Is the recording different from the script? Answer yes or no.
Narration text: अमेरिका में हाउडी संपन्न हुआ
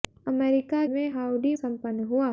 no